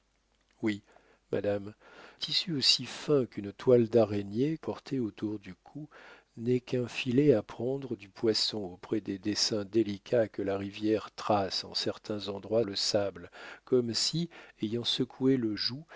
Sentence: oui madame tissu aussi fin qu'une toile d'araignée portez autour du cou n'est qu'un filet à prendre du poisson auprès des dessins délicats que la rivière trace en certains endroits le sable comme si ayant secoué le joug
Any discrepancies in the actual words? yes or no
no